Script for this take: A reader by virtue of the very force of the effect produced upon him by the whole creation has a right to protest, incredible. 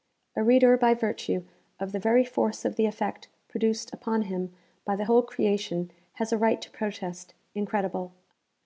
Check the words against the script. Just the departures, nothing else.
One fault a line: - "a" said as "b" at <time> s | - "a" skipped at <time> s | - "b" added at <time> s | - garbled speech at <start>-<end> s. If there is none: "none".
none